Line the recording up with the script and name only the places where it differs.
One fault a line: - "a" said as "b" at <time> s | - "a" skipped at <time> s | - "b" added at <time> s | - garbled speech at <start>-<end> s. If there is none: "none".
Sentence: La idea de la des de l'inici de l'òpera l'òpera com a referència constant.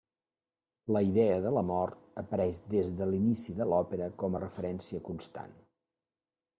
- "mort apareix" added at 1.7 s
- "l'òpera" skipped at 4.1 s